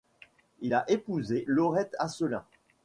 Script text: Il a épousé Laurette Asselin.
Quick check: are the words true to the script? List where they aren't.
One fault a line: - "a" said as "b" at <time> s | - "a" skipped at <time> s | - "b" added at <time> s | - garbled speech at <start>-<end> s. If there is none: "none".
none